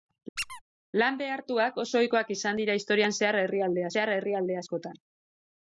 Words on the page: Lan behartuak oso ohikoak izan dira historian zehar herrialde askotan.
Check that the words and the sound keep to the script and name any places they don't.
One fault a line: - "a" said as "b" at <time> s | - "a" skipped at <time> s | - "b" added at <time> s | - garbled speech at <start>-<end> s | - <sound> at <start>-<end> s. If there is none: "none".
- squeak at 0.4-0.6 s
- "zehar herrialde" added at 4.0 s